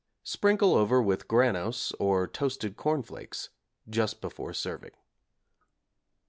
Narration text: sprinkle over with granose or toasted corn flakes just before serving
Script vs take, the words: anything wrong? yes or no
no